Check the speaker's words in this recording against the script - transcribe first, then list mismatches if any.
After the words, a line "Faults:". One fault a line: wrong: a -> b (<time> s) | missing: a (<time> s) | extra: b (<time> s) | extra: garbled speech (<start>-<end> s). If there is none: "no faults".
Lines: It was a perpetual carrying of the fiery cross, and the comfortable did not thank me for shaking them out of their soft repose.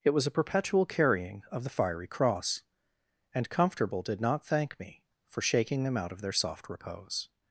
It was a perpetual carrying of the fiery cross, and comfortable did not thank me for shaking them out of their soft repose.
Faults:
missing: the (3.5 s)